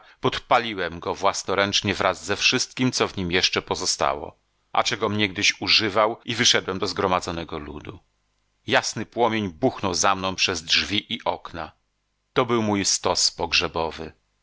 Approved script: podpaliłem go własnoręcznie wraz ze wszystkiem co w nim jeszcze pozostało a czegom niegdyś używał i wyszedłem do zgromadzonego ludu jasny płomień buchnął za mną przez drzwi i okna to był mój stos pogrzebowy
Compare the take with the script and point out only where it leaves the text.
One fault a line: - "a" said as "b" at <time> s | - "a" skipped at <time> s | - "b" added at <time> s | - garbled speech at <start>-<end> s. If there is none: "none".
none